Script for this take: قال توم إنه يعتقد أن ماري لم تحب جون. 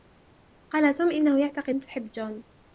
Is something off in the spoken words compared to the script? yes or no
yes